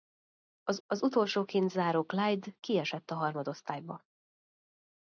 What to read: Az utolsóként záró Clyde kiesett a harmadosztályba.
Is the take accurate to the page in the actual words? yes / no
no